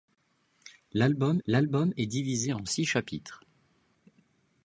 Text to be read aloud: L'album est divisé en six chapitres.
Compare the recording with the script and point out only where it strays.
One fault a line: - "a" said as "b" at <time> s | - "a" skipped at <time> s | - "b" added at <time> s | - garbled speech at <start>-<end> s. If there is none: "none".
- "l'album" added at 1.5 s